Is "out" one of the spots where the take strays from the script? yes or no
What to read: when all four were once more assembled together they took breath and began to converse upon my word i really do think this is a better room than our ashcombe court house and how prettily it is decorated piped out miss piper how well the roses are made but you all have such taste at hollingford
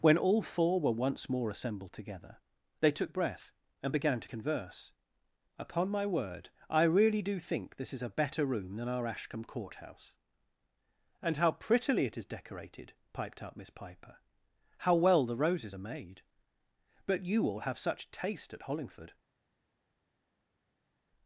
yes